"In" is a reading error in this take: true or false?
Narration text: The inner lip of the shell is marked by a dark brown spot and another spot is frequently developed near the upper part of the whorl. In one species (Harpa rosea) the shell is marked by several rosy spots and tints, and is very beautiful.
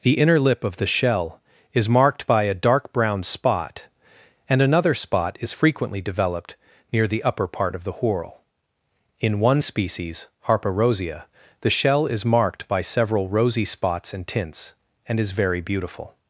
false